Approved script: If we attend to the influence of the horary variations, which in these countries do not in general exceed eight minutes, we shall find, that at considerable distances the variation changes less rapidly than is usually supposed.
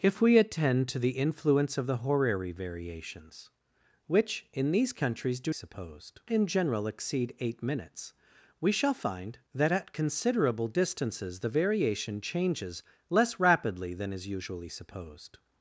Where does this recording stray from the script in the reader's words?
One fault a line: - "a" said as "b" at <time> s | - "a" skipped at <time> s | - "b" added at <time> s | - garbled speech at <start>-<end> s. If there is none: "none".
- "not" said as "supposed" at 5.5 s